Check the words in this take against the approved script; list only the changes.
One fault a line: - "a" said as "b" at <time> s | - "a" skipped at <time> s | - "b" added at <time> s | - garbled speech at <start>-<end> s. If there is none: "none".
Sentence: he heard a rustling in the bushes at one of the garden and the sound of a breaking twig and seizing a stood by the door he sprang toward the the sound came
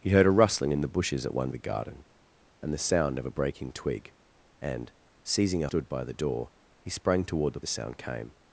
none